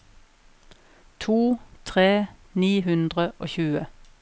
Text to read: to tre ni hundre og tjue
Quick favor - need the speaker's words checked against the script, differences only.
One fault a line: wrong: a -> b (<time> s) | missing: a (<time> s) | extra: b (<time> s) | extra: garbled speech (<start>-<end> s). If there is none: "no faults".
no faults